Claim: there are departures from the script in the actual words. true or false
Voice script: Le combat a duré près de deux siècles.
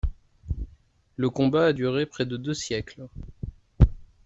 false